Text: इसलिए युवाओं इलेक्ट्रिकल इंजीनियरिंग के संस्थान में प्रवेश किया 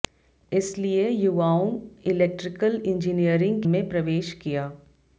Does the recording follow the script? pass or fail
fail